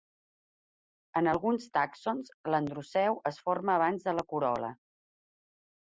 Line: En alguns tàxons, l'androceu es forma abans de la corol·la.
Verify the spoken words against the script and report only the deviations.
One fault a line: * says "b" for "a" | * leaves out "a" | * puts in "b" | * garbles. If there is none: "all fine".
all fine